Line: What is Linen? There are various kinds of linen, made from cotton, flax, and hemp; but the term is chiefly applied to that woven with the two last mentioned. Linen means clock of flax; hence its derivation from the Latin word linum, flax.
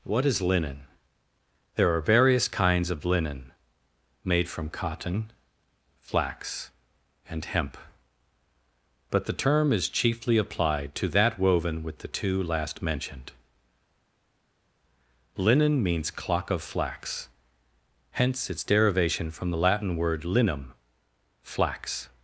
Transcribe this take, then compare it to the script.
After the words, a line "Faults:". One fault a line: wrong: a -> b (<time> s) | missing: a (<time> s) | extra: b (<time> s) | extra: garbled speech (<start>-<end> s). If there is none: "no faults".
What is Linen? There are various kinds of linen, made from cotton, flax, and hemp; but the term is chiefly applied to that woven with the two last mentioned. Linen means clock of flax; hence its derivation from the Latin word linum, flax.
Faults:
no faults